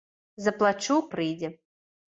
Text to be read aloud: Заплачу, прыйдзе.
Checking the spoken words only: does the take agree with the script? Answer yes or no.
yes